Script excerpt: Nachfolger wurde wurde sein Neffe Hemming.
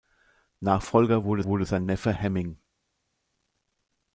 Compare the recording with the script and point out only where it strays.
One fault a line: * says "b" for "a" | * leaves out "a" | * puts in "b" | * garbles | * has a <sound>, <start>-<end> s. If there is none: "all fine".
all fine